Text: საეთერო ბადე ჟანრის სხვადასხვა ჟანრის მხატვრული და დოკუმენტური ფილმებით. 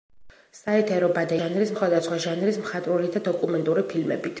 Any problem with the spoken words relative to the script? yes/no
no